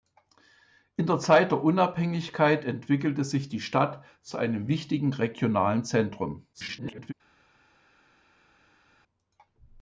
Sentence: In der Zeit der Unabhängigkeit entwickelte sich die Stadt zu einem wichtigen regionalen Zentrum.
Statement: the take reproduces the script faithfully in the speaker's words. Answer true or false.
false